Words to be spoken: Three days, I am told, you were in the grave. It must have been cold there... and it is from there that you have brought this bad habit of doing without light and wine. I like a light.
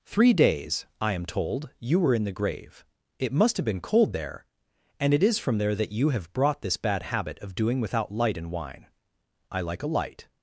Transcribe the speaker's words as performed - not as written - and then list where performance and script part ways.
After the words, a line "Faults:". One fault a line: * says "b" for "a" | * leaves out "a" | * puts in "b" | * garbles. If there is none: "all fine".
Three days, I am told, you were in the grave. It must have been cold there... and it is from there that you have brought this bad habit of doing without light and wine. I like a light.
Faults:
all fine